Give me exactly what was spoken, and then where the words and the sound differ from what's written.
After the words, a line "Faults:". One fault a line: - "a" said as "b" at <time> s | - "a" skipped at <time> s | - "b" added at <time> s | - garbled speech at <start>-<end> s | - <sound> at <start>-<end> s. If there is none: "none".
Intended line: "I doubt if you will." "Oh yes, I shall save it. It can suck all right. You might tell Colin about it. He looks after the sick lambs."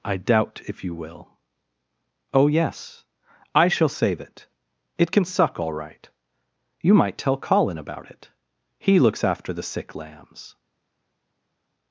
"I doubt if you will." "Oh yes, I shall save it. It can suck all right. You might tell Colin about it. He looks after the sick lambs."
Faults:
none